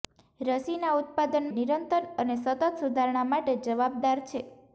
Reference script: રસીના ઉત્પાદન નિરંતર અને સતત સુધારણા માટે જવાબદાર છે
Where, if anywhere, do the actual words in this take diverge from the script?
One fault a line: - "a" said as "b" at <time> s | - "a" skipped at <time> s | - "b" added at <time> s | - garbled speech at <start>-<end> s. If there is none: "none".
none